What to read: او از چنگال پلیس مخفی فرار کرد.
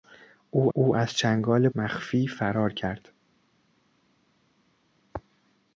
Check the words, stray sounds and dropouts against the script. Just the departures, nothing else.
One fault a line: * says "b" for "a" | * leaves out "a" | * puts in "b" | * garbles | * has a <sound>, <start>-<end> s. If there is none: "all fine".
* puts in "او"
* leaves out "پلیس"